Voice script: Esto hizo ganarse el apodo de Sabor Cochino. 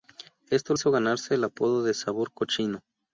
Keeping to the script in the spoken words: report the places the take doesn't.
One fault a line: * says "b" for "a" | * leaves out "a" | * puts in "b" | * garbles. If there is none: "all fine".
all fine